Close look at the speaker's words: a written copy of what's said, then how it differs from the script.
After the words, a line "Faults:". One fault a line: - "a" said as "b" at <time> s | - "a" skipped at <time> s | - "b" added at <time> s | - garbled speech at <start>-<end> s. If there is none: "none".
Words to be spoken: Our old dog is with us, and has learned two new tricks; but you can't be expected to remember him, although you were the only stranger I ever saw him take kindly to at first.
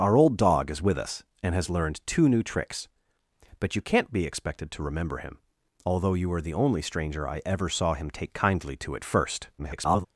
Our old dog is with us, and has learned two new tricks; but you can't be expected to remember him, although you were the only stranger I ever saw him take kindly to at first. [garbled]
Faults:
- garbled speech at 9.6-10.1 s